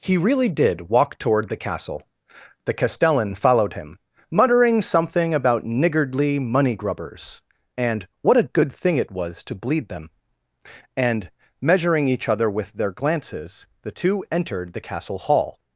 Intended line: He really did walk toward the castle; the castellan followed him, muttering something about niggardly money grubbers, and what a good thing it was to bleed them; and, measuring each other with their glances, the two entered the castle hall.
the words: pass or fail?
pass